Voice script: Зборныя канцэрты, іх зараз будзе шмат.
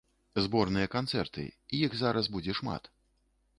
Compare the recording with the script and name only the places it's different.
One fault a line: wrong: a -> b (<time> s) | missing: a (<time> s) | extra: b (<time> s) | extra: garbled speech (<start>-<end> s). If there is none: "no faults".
no faults